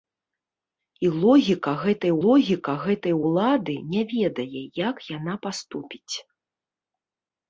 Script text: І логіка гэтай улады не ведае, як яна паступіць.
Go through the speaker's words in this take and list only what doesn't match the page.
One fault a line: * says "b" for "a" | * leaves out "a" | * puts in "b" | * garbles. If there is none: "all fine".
* puts in "логіка гэтай"